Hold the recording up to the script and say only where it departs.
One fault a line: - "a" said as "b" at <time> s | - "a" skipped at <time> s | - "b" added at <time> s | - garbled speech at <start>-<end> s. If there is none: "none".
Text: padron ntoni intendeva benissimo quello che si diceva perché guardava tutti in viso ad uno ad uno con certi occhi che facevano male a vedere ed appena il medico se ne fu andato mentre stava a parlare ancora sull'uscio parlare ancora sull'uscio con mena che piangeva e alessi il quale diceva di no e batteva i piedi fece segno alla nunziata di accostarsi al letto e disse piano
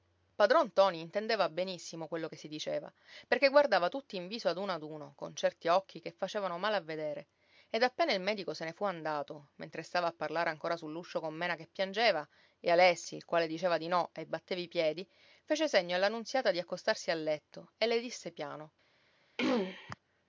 - "parlare ancora sull'uscio" skipped at 11.2 s
- "le" added at 17.9 s